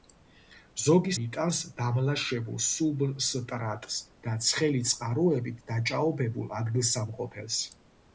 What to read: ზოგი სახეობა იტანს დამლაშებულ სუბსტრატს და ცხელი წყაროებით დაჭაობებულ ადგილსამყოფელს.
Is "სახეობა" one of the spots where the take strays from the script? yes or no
yes